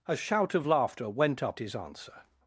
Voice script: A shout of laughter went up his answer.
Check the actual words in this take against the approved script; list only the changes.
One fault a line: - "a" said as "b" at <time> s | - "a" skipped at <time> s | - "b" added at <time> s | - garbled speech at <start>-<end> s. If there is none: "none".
none